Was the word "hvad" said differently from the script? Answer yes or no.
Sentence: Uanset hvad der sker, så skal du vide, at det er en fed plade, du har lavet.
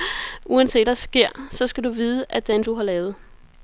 yes